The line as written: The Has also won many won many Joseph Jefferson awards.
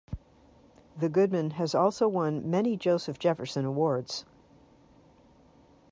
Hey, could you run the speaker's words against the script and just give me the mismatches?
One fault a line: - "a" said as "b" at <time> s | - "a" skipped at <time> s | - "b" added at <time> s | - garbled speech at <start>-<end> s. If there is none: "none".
- "Goodman" added at 1.1 s
- "won many" skipped at 2.8 s